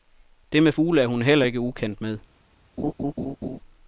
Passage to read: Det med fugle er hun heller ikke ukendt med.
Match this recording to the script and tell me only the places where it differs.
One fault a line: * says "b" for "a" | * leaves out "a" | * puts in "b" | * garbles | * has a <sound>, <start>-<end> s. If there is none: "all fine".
* has a laugh, 2.8-3.6 s